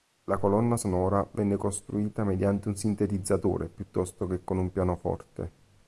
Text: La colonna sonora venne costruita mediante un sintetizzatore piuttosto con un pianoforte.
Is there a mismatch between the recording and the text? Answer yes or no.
yes